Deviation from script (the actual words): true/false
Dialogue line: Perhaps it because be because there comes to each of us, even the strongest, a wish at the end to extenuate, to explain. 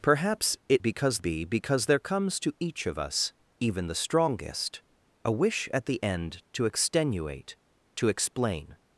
false